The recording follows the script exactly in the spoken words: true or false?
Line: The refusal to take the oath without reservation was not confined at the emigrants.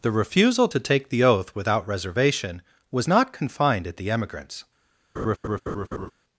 true